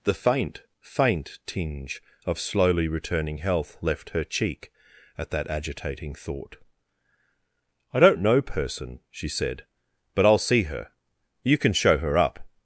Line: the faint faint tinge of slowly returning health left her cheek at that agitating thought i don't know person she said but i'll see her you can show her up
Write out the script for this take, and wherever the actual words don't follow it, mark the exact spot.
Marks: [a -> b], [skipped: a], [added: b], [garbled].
the faint faint tinge of slowly returning health left her cheek at that agitating thought i don't know person she said but i'll see her you can show her up